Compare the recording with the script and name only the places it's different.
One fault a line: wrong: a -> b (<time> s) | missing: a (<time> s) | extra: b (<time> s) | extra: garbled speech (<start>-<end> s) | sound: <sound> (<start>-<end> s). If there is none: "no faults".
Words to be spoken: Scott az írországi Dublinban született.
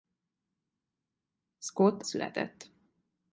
missing: az írországi Dublinban (2.0 s)